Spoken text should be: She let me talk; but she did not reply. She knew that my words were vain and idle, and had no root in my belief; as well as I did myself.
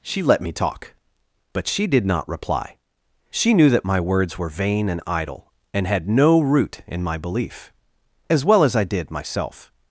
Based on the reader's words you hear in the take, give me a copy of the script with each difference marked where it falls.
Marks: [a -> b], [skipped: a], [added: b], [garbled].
She let me talk; but she did not reply. She knew that my words were vain and idle, and had no root in my belief; as well as I did myself.